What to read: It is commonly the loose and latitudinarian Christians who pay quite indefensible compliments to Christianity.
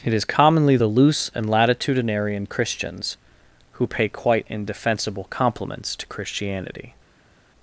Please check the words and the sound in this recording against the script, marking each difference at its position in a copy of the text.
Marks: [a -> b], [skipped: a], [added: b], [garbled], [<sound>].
It is commonly the loose and latitudinarian Christians who pay quite indefensible compliments to Christianity.